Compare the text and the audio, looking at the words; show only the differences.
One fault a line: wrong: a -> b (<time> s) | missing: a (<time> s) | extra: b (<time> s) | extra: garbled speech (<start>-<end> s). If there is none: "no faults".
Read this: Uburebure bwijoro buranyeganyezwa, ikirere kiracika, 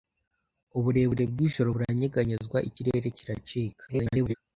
extra: garbled speech (3.9-4.3 s)